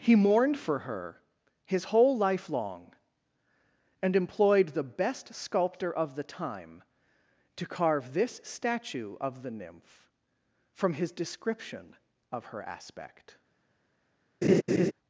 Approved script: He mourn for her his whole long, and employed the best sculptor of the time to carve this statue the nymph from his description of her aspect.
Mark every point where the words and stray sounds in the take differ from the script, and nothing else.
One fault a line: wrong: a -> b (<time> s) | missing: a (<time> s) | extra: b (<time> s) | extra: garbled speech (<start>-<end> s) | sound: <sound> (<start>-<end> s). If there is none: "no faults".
wrong: mourn -> mourned (0.1 s)
extra: life (2.2 s)
extra: of (9.2 s)
sound: laugh (14.4-14.9 s)